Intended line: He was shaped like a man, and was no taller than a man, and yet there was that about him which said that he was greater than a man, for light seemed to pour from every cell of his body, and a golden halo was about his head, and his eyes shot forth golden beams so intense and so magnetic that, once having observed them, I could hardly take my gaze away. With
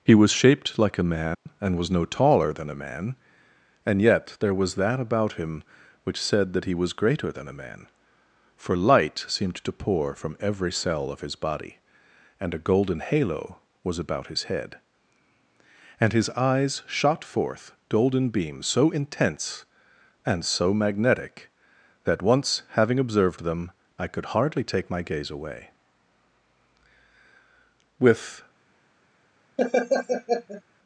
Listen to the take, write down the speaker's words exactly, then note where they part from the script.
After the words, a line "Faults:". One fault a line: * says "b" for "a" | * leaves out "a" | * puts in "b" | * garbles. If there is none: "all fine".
He was shaped like a man, and was no taller than a man, and yet there was that about him which said that he was greater than a man, for light seemed to pour from every cell of his body, and a golden halo was about his head, and his eyes shot forth golden beams so intense and so magnetic that, once having observed them, I could hardly take my gaze away. With
Faults:
all fine